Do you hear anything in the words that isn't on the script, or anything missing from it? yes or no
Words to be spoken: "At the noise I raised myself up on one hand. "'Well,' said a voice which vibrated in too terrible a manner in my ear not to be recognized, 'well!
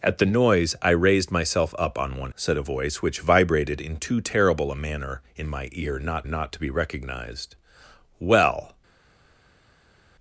yes